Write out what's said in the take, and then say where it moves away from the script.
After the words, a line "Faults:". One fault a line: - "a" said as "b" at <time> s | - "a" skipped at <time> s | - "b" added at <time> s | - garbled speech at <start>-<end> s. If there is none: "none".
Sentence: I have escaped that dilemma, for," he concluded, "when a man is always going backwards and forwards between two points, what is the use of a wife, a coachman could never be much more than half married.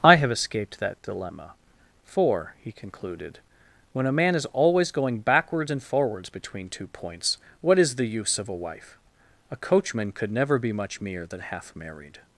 I have escaped that dilemma, for," he concluded, "when a man is always going backwards and forwards between two points, what is the use of a wife, a coachman could never be much mere than half married.
Faults:
- "more" said as "mere" at 11.0 s